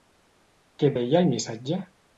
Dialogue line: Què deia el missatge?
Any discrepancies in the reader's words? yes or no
no